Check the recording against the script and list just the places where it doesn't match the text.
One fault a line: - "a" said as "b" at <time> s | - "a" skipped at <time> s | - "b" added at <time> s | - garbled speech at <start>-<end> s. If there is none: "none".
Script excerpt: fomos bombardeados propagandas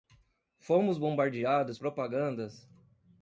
none